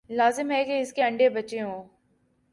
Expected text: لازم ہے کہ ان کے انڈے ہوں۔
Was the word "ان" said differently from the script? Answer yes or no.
yes